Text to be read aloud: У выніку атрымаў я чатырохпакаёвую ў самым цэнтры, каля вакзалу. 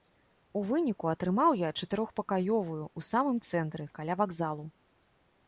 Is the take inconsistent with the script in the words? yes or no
no